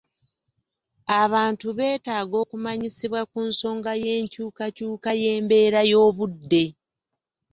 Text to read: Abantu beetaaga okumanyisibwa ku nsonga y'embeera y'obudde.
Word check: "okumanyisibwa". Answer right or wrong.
right